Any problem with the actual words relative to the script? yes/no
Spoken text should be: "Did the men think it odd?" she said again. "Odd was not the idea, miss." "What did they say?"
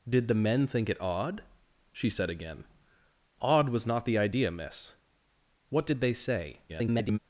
yes